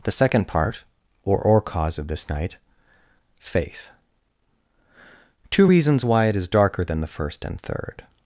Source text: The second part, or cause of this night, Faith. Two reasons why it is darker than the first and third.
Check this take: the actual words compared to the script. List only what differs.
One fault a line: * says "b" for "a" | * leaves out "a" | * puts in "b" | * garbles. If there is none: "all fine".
* puts in "or"